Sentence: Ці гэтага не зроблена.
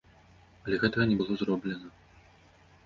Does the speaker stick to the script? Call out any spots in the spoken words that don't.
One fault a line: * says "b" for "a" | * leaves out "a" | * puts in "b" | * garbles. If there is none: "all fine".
* says "Але" for "Ці"
* puts in "было"